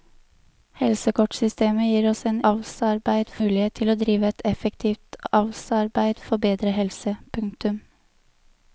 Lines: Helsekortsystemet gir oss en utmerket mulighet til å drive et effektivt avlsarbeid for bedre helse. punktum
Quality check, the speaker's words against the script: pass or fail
fail